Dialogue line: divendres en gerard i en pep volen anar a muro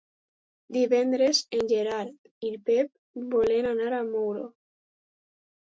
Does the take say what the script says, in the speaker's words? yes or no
yes